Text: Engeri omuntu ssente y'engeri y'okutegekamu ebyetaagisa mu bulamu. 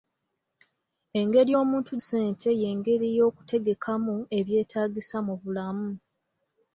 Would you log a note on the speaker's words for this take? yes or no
no